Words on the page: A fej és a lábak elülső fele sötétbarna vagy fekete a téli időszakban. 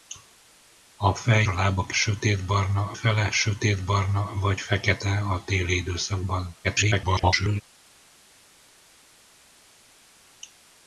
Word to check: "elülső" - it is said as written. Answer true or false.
false